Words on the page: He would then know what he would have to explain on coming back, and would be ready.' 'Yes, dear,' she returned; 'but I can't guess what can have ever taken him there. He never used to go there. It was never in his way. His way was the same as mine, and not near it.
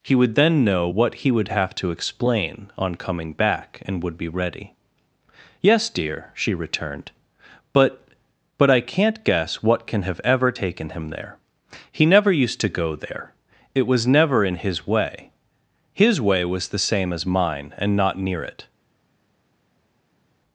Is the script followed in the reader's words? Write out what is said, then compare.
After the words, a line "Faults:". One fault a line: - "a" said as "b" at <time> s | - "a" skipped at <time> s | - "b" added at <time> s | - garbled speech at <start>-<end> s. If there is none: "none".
He would then know what he would have to explain on coming back, and would be ready.' 'Yes, dear,' she returned; 'but but I can't guess what can have ever taken him there. He never used to go there. It was never in his way. His way was the same as mine, and not near it.
Faults:
- "but" added at 8.6 s